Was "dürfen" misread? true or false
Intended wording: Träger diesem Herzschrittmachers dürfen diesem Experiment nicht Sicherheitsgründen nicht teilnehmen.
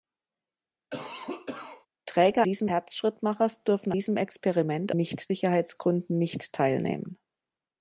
false